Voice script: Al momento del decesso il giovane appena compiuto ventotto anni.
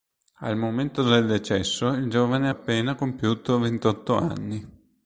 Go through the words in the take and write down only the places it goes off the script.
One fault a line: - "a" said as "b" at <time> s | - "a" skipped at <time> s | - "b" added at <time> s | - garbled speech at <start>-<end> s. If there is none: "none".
none